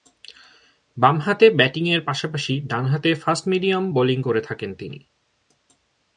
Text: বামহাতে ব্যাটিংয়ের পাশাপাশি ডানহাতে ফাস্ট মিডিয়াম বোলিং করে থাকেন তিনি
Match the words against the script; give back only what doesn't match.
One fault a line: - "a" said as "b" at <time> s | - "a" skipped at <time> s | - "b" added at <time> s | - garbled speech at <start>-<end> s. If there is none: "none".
none